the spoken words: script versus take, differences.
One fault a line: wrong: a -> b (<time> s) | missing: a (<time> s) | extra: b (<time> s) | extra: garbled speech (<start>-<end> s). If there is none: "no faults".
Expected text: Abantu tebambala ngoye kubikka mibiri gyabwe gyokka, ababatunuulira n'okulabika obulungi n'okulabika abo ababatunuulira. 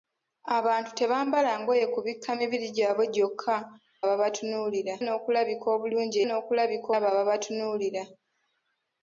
no faults